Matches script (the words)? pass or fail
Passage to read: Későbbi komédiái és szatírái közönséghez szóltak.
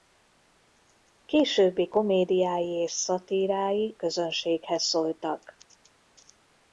pass